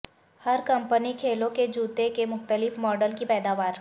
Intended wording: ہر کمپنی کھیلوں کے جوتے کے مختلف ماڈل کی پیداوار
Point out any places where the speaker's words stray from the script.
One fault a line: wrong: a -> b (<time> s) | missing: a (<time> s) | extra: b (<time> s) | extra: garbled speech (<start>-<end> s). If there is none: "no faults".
no faults